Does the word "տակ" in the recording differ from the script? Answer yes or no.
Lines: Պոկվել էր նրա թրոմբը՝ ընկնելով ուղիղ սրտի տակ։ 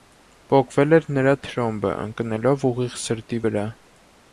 yes